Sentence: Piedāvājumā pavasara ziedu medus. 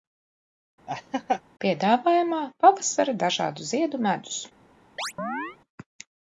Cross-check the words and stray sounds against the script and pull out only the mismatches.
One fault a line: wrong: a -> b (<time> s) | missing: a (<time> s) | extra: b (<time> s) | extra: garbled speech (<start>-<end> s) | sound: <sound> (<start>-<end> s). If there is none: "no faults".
sound: laugh (0.9-1.4 s)
extra: dažādu (3.3 s)
sound: chirp (5.0-5.6 s)